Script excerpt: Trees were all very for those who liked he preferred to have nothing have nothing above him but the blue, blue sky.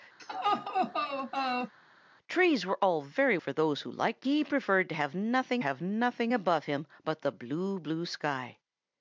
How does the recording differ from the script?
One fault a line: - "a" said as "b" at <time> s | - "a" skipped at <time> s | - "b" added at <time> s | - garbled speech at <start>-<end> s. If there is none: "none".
none